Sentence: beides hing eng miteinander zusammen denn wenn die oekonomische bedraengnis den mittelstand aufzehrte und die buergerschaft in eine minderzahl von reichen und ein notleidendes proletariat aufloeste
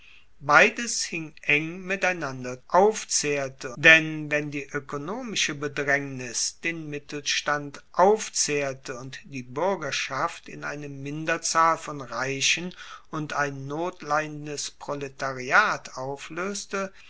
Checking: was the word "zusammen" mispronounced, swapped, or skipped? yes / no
yes